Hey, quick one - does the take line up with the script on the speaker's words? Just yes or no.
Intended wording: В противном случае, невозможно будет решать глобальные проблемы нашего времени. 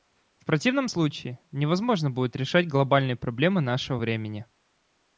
yes